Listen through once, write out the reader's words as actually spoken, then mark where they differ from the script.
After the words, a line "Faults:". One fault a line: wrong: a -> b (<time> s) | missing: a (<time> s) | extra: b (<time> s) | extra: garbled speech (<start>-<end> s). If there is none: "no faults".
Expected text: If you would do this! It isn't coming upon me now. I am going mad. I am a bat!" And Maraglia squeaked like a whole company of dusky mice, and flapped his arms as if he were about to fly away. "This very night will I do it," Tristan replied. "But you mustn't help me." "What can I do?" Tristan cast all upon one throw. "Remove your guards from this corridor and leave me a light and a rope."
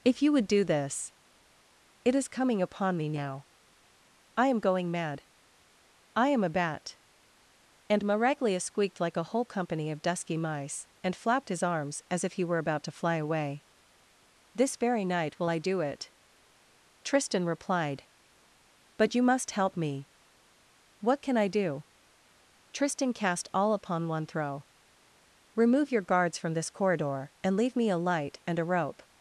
If you would do this! It is coming upon me now. I am going mad. I am a bat!" And Maraglia squeaked like a whole company of dusky mice, and flapped his arms as if he were about to fly away. "This very night will I do it," Tristan replied. "But you must help me." "What can I do?" Tristan cast all upon one throw. "Remove your guards from this corridor and leave me a light and a rope."
Faults:
wrong: isn't -> is (2.1 s)
wrong: mustn't -> must (19.2 s)